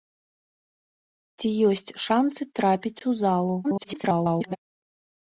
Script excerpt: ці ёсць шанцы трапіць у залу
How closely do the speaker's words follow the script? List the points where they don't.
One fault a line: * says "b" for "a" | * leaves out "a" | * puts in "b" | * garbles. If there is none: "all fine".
* garbles